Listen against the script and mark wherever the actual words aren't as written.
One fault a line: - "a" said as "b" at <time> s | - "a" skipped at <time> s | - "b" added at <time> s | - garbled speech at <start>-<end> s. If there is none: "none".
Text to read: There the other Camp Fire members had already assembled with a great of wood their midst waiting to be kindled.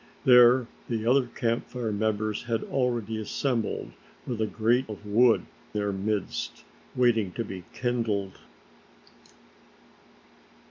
none